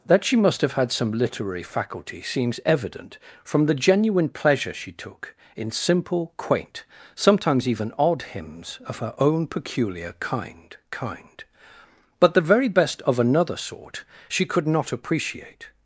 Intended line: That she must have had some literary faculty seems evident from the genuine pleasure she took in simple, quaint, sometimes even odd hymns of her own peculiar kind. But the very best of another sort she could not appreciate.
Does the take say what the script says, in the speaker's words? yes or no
no